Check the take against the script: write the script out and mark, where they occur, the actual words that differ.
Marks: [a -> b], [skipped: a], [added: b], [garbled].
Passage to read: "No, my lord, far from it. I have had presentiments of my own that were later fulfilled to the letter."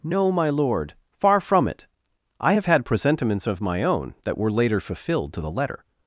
"No, my lord, far from it. I have had presentiments of my own that were later fulfilled to the letter."